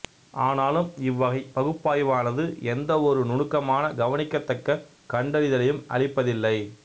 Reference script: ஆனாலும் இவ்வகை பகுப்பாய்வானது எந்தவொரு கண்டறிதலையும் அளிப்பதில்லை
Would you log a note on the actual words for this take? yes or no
yes